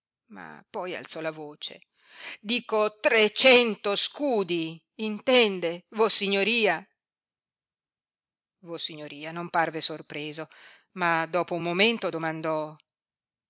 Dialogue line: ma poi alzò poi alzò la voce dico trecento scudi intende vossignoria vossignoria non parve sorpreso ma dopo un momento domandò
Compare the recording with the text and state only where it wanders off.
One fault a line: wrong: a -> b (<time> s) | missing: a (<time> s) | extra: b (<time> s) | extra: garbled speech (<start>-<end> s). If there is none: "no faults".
missing: poi alzò (1.2 s)